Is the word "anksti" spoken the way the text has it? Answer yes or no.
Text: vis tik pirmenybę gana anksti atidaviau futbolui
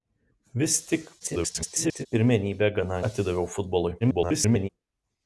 no